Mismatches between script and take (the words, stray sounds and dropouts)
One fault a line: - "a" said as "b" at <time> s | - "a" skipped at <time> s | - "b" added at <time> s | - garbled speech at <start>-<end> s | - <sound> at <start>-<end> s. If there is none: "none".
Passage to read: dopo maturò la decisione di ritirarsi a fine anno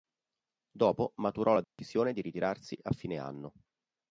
- dropout at 1.6-1.8 s